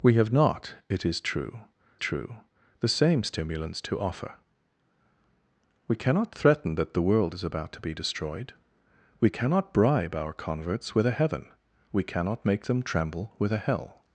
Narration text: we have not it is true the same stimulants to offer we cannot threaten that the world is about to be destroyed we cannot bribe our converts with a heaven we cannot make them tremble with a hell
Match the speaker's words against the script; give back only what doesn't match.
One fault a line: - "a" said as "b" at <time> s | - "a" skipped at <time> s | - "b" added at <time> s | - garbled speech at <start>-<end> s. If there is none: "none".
- "true" added at 2.0 s